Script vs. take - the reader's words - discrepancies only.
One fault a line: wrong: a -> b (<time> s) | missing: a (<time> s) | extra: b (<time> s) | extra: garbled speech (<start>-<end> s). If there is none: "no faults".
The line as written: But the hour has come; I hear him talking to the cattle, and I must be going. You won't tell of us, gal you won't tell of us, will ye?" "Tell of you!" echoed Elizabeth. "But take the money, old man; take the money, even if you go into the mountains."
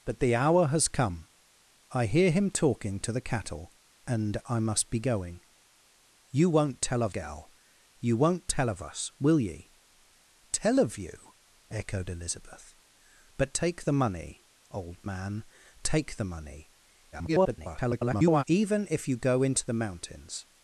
missing: us (7.2 s)
extra: garbled speech (17.1-18.4 s)